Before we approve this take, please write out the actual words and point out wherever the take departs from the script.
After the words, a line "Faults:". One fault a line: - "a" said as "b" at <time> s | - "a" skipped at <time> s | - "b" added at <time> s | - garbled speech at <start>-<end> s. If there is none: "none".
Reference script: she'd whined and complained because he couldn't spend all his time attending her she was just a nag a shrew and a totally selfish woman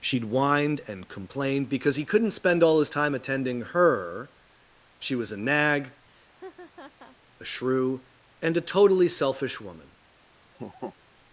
she'd whined and complained because he couldn't spend all his time attending her she was a nag a shrew and a totally selfish woman
Faults:
- "just" skipped at 5.3 s